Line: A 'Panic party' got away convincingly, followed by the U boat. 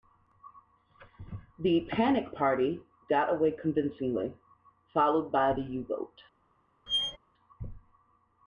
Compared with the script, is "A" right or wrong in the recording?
wrong